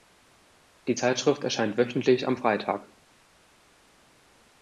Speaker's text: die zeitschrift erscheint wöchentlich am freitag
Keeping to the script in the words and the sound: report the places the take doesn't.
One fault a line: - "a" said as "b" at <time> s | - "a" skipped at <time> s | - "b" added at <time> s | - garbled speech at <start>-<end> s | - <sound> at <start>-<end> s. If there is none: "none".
none